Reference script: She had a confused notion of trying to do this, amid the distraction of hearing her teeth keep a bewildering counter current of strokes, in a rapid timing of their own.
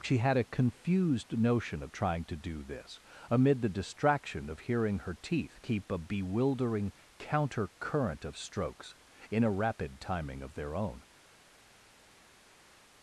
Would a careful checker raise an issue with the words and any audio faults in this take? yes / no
no